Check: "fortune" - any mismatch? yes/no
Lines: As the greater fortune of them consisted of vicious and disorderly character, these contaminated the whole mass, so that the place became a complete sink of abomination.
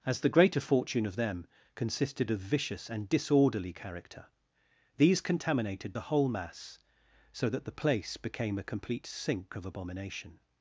no